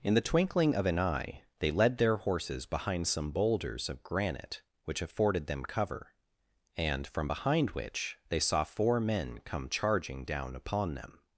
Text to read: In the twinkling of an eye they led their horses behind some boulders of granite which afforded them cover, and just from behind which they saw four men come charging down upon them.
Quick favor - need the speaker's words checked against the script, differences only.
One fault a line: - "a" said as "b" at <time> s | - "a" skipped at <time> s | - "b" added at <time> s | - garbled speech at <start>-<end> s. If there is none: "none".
- "just" skipped at 7.0 s